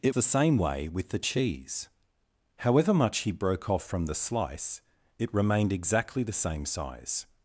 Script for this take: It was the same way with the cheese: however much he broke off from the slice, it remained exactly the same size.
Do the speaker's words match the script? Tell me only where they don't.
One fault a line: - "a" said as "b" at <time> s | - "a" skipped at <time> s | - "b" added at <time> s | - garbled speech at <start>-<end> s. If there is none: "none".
- "was" skipped at 0.1 s